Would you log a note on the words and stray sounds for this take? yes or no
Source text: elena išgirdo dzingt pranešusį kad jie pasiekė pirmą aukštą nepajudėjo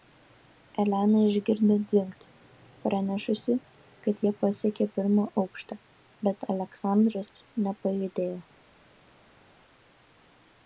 yes